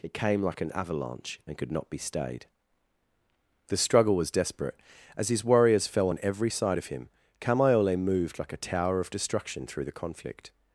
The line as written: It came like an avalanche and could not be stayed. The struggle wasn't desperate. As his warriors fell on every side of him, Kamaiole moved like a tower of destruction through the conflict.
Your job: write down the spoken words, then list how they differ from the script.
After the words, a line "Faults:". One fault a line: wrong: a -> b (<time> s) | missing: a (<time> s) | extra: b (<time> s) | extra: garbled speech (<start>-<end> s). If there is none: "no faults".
It came like an avalanche and could not be stayed. The struggle was desperate. As his warriors fell on every side of him, Kamaiole moved like a tower of destruction through the conflict.
Faults:
wrong: wasn't -> was (4.2 s)